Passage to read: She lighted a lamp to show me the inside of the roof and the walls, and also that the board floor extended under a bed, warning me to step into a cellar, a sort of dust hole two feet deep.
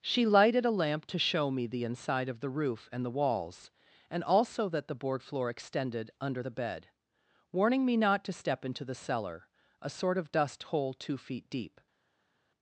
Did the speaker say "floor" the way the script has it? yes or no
yes